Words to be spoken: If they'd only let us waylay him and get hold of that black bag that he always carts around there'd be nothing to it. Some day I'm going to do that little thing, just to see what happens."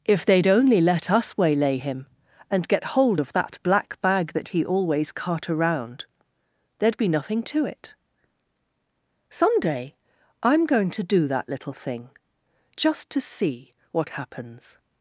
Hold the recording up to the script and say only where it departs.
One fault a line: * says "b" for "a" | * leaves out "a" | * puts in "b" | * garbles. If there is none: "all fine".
* says "cart" for "carts"